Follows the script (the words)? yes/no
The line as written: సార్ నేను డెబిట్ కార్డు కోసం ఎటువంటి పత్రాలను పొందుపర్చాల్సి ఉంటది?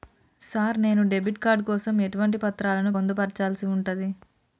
yes